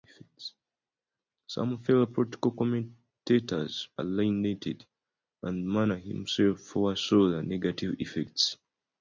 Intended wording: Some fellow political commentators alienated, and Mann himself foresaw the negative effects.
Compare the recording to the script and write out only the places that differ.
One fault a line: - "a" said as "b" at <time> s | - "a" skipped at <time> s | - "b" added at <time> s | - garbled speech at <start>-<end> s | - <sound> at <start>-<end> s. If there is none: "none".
none